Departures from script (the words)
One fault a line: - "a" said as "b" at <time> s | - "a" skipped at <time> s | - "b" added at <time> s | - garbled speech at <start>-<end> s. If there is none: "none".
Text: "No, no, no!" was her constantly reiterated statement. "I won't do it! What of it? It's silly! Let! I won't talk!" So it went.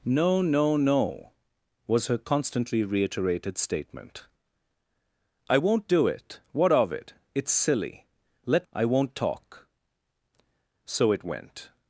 none